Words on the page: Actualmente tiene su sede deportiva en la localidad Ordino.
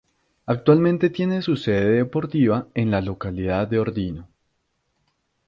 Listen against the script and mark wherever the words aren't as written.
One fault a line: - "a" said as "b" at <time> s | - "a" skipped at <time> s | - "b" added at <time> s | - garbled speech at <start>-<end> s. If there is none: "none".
- "de" added at 3.7 s